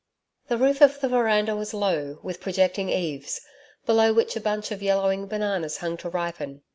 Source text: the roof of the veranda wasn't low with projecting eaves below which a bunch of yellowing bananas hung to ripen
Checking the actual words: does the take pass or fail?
fail